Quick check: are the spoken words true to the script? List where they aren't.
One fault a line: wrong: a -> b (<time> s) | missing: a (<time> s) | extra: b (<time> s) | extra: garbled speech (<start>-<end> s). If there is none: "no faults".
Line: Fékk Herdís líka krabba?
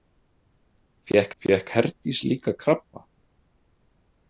extra: fékk (1.4 s)